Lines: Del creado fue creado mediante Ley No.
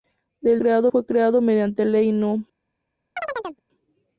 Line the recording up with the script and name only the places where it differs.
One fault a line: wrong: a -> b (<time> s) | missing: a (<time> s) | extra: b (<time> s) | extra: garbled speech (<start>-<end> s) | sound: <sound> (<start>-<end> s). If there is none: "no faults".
sound: chirp (3.2-3.6 s)